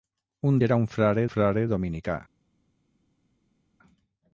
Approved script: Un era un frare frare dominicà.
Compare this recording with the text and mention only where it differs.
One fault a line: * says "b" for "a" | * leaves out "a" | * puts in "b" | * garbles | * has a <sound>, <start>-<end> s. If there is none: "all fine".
all fine